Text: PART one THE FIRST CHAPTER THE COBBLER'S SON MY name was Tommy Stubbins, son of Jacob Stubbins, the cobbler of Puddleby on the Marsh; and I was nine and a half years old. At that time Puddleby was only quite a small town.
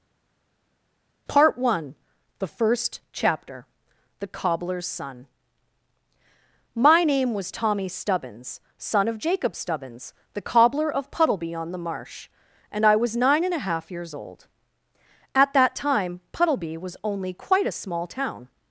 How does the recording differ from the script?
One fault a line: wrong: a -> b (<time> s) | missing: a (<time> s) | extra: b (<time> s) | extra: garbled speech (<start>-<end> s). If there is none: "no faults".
no faults